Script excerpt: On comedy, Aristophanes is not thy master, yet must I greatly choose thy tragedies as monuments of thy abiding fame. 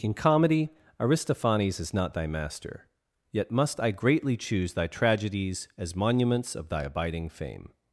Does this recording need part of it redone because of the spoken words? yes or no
yes